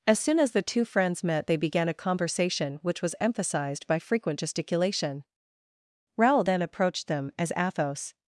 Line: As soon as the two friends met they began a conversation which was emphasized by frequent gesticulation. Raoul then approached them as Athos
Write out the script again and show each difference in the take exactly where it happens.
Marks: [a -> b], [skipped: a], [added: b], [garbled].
As soon as the two friends met they began a conversation which was emphasized by frequent gesticulation. Raoul then approached them as Athos